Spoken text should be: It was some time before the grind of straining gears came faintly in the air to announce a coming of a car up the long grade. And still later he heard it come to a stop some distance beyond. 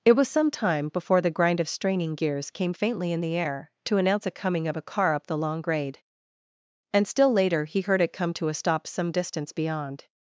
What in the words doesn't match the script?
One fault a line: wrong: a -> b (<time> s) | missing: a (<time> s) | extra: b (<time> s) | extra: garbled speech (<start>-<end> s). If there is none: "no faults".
no faults